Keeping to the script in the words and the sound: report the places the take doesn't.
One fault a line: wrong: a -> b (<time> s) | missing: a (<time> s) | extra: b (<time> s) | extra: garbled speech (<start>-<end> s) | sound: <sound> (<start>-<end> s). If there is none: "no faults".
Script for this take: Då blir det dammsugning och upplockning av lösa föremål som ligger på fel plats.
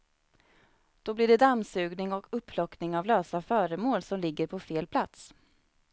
no faults